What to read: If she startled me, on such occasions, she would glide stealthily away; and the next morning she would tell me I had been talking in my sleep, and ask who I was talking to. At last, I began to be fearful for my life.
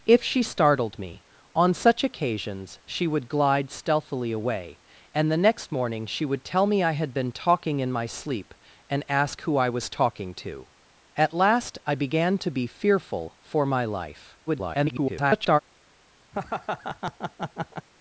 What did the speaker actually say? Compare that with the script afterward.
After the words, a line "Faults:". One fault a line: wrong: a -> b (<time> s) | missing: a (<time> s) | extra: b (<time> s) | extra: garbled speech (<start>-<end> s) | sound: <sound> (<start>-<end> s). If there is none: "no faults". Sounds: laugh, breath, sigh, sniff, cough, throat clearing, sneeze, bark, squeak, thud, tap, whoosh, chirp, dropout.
If she startled me, on such occasions, she would glide stealthily away; and the next morning she would tell me I had been talking in my sleep, and ask who I was talking to. At last, I began to be fearful for my life. [garbled]
Faults:
extra: garbled speech (14.5-15.6 s)
sound: laugh (16.3-17.9 s)